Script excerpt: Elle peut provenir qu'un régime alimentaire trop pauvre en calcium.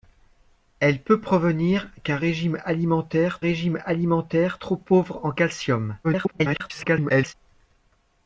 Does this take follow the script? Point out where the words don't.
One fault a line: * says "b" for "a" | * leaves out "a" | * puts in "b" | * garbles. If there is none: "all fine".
* puts in "régime alimentaire"
* garbles